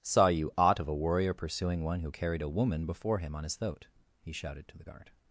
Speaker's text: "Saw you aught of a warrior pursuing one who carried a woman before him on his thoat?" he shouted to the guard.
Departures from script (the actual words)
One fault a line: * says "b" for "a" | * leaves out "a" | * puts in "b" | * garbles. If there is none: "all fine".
all fine